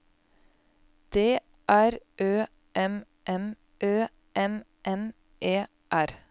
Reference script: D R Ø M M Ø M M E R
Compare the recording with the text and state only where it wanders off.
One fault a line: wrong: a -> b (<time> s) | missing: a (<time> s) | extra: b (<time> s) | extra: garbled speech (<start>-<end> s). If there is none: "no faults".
no faults